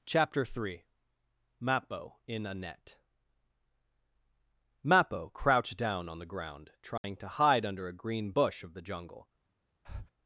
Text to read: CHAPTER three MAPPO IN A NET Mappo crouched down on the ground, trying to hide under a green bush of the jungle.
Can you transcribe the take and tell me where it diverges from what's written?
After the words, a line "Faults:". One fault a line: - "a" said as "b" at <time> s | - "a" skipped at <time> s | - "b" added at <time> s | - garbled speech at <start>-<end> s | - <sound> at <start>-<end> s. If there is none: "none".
CHAPTER three MAPPO IN A NET Mappo crouched down on the ground, trying to hide under a green bush of the jungle.
Faults:
- dropout at 7.0-7.0 s
- breath at 9.8-10.1 s